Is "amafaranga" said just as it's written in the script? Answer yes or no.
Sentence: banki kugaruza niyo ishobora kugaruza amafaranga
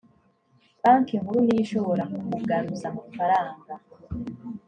yes